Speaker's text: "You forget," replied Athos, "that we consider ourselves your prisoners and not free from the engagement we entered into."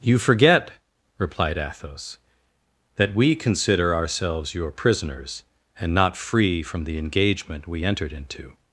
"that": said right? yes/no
yes